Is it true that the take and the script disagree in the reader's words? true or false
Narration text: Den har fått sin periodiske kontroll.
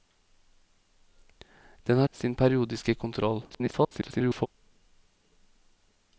true